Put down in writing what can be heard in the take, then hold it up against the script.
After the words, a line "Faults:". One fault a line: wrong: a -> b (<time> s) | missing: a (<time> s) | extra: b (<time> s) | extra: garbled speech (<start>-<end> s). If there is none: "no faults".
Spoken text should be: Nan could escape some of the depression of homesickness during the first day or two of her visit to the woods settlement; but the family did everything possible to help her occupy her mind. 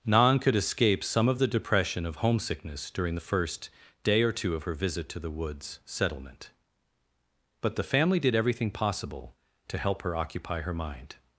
Nan could escape some of the depression of homesickness during the first day or two of her visit to the woods settlement; but the family did everything possible to help her occupy her mind.
Faults:
no faults